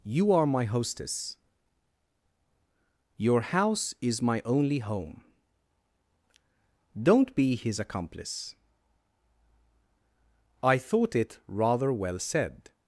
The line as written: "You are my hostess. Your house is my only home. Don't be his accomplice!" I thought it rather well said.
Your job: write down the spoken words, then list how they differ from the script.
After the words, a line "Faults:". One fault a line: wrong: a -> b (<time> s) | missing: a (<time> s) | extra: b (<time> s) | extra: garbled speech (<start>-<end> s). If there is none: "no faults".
"You are my hostess. Your house is my only home. Don't be his accomplice!" I thought it rather well said.
Faults:
no faults